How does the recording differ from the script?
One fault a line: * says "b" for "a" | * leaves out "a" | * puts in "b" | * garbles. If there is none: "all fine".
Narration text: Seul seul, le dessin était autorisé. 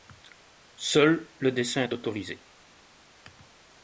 * leaves out "seul"
* says "est" for "était"